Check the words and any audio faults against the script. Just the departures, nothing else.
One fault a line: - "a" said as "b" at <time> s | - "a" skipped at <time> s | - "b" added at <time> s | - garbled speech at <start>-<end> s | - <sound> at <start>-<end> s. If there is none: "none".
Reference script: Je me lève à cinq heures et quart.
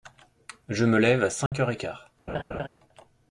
- dropout at 1.5-1.5 s
- laugh at 2.3-2.7 s